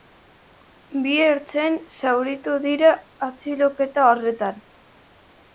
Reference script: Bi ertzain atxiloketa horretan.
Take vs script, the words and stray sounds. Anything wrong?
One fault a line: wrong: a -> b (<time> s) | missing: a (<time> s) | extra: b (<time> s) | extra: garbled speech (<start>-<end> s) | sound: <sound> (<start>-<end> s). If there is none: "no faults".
extra: zauritu dira (2.0 s)